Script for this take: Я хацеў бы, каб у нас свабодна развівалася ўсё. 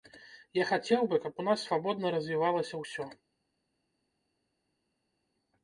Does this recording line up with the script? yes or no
yes